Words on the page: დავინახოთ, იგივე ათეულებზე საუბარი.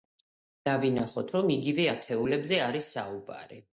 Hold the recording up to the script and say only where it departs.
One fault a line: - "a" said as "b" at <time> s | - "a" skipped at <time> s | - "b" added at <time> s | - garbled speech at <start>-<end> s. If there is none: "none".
- "რომ" added at 1.3 s
- "არის" added at 2.7 s